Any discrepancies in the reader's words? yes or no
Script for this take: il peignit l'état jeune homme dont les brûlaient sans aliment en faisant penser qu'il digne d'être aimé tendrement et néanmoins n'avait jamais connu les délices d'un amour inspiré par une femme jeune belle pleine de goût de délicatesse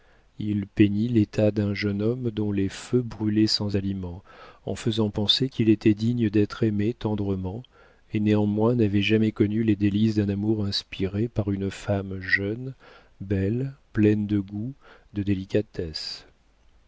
yes